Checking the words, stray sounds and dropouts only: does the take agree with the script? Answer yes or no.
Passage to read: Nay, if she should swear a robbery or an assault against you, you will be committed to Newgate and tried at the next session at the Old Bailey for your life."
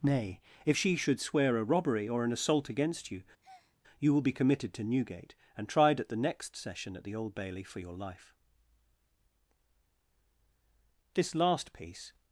no